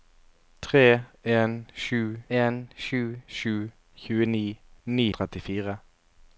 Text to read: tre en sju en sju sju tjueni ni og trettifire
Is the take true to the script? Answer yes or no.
yes